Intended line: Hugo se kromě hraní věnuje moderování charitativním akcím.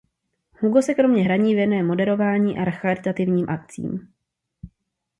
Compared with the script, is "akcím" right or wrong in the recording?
right